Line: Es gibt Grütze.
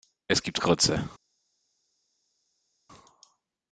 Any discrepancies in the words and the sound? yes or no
no